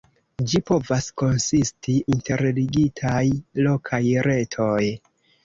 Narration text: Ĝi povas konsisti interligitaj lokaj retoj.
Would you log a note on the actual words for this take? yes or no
no